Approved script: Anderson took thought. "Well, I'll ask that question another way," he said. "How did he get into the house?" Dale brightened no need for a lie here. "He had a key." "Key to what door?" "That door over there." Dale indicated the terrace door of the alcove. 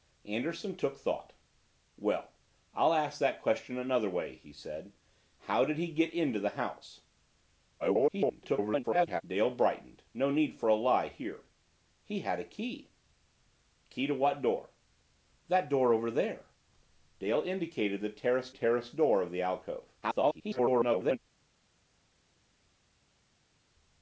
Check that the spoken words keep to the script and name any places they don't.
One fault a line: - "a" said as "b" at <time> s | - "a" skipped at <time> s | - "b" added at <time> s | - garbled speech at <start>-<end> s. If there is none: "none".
- garbled speech at 7.8-9.2 s
- "terrace" added at 18.5 s
- garbled speech at 20.0-21.2 s